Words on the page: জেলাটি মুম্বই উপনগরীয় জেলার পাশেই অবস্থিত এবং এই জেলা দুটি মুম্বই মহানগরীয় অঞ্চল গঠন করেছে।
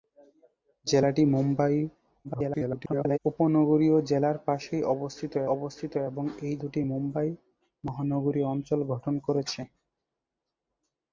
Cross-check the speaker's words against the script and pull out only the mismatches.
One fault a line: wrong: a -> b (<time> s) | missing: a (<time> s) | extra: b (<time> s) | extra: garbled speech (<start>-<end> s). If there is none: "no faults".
extra: garbled speech (2.2-3.2 s)
extra: অবস্থিত (5.5 s)
missing: জেলা (6.5 s)